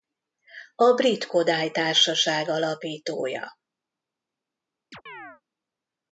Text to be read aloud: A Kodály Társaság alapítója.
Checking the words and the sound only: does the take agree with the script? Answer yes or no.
no